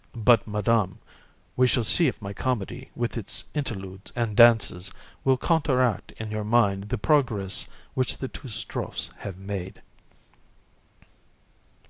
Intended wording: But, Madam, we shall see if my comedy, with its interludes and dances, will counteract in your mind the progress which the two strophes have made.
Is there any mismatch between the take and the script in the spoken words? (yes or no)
no